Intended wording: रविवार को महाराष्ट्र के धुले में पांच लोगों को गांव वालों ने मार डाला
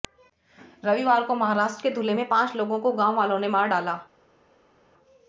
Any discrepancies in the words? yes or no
no